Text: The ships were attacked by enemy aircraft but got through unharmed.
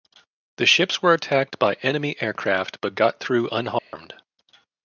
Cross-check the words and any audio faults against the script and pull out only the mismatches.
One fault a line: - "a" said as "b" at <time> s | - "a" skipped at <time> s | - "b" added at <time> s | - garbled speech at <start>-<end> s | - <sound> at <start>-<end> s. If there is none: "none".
- dropout at 3.8-3.9 s